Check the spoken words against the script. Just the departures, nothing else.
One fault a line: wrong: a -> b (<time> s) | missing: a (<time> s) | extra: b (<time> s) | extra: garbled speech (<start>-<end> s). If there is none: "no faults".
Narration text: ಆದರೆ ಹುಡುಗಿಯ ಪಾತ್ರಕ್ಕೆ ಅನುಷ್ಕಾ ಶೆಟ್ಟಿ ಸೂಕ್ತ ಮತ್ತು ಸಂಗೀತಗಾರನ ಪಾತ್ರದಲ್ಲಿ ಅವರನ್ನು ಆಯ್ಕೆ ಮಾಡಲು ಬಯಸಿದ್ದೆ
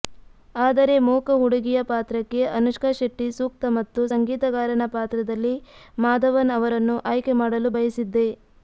extra: ಮೂಕ (1.1 s)
extra: ಮಾಧವನ್ (6.0 s)